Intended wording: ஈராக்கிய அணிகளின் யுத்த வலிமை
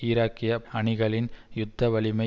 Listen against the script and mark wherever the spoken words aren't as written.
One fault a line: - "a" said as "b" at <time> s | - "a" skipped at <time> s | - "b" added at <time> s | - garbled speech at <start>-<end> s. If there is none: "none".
none